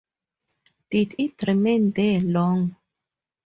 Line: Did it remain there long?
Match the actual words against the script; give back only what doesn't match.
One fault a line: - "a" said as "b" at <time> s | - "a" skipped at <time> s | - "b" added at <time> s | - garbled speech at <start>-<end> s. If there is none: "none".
none